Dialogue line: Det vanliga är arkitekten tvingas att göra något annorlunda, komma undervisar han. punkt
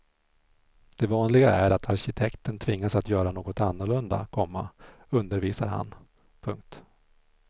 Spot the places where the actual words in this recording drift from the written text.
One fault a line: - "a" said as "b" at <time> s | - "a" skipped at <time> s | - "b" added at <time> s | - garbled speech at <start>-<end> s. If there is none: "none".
- "att" added at 1.7 s